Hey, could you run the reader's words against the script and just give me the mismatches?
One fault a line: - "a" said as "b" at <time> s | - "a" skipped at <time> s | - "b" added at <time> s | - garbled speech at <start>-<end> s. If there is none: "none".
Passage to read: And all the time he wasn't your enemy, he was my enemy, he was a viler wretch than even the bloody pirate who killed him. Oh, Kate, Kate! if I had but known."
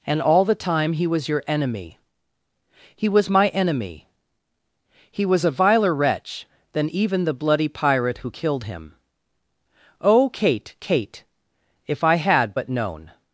- "wasn't" said as "was" at 1.1 s